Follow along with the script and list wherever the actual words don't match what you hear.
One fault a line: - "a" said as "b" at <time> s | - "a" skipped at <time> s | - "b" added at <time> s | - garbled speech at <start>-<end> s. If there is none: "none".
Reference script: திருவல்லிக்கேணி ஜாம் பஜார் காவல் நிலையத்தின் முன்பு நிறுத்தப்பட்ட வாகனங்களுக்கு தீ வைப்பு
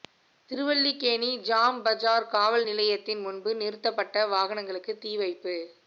none